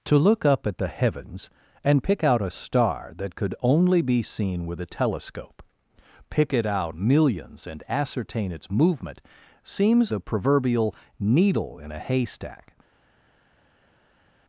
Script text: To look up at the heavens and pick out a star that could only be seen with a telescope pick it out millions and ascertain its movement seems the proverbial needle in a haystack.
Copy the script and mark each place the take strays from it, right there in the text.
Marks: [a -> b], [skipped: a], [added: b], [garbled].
To look up at the heavens and pick out a star that could only be seen with a telescope pick it out millions and ascertain its movement seems the proverbial needle in a haystack.